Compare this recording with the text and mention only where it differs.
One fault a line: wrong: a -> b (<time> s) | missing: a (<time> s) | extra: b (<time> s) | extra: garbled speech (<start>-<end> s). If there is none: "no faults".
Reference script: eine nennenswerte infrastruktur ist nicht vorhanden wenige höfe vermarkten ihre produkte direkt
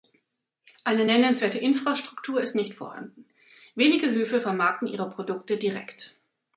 no faults